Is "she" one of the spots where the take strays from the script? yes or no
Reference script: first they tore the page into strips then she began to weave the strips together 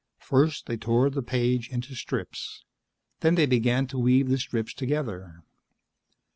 yes